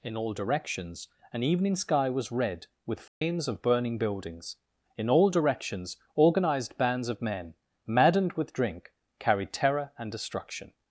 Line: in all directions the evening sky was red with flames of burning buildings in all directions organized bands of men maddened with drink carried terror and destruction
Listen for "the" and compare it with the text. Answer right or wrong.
wrong